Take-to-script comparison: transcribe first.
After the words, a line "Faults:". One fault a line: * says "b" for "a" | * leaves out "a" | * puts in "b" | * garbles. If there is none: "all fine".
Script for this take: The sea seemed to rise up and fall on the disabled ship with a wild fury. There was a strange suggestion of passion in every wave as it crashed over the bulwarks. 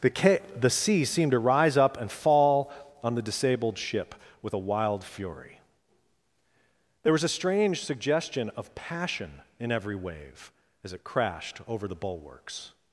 The ca the sea seemed to rise up and fall on the disabled ship with a wild fury. There was a strange suggestion of passion in every wave as it crashed over the bulwarks.
Faults:
* puts in "ca the"